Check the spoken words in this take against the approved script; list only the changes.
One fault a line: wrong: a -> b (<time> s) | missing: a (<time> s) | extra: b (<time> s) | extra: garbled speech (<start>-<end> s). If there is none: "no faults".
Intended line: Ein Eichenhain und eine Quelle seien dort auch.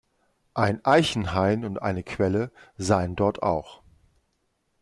no faults